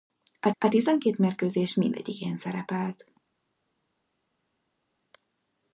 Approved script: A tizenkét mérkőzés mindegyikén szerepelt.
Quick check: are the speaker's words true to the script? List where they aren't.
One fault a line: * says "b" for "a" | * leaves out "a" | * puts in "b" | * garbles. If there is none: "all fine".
* puts in "a"